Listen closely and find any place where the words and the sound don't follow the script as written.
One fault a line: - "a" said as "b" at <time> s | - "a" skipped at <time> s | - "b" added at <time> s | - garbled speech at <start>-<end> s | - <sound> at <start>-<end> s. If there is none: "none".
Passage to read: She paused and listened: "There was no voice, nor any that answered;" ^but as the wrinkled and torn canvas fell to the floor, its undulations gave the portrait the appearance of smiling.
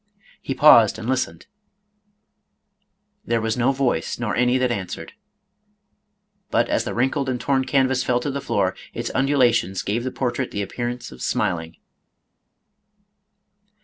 - "She" said as "He" at 0.4 s